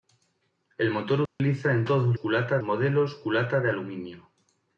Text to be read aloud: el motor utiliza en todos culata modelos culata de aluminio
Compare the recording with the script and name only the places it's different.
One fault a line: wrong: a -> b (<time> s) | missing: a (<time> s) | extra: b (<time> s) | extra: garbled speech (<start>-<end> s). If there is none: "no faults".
no faults